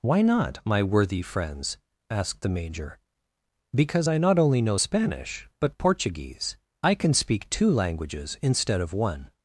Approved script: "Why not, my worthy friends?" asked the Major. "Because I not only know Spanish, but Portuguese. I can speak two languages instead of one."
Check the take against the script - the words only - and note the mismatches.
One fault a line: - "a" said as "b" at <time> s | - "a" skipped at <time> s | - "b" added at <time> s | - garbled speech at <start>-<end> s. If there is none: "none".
none